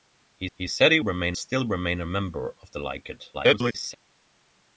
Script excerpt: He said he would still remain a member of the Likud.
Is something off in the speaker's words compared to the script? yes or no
yes